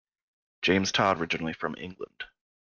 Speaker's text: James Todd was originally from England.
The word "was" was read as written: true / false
false